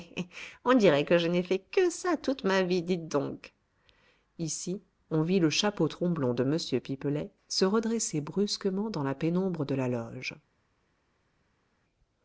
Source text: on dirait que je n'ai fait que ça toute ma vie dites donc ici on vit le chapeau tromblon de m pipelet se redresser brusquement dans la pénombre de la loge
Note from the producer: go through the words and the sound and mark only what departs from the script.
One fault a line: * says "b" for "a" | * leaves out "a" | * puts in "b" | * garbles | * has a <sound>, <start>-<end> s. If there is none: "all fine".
all fine